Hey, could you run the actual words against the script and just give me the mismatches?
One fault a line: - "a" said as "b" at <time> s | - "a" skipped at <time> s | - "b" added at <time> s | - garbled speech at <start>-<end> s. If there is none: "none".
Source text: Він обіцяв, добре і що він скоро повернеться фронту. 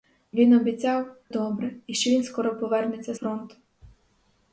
none